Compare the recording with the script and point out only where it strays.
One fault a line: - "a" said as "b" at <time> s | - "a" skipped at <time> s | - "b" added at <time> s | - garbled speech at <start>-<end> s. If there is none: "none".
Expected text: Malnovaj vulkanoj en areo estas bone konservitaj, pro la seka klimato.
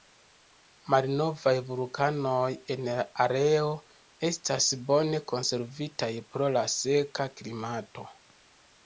- "la" added at 2.9 s